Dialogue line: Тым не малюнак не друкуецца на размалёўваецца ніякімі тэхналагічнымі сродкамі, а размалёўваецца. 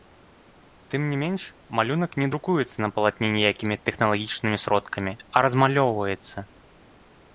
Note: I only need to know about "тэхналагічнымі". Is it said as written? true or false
true